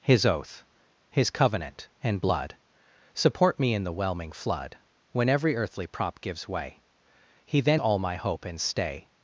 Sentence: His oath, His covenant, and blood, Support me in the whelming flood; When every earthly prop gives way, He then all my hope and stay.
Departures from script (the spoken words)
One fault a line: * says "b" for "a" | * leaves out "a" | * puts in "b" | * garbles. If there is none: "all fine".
all fine